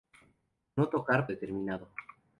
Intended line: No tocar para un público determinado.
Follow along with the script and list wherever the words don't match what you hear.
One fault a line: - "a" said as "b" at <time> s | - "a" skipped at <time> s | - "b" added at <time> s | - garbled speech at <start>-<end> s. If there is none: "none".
- "para un público" skipped at 1.3 s